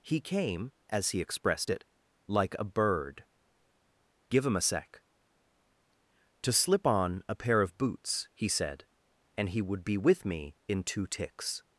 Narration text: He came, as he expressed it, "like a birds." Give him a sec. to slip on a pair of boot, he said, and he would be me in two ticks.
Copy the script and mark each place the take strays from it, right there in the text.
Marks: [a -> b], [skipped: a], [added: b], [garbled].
He came, as he expressed it, "like a [birds." -> bird] Give him a sec. to slip on a pair of [boot, -> boots] he said, and he would be [added: with] me in two ticks.